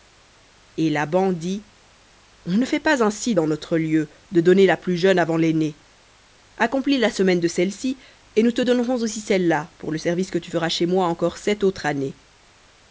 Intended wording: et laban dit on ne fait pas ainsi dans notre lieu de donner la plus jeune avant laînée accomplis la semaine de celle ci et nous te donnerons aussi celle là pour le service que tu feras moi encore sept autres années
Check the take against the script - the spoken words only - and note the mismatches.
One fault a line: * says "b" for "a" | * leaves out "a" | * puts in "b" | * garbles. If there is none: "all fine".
* puts in "chez"